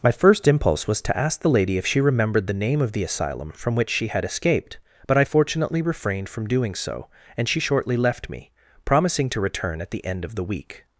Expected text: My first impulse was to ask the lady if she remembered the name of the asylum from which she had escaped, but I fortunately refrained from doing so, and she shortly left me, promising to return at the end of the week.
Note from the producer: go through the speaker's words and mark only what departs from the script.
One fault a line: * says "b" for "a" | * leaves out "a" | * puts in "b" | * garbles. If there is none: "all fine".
all fine